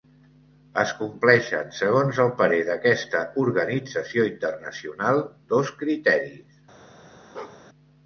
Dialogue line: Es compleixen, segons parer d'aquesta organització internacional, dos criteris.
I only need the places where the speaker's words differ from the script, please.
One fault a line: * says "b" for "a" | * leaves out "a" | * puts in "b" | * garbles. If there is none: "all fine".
* puts in "el"